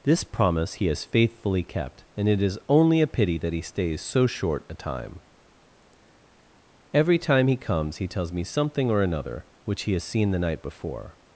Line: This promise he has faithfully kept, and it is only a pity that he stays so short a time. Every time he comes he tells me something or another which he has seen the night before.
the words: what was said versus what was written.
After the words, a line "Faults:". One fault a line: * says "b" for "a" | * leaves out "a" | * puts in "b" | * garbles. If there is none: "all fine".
This promise he has faithfully kept, and it is only a pity that he stays so short a time. Every time he comes he tells me something or another which he has seen the night before.
Faults:
all fine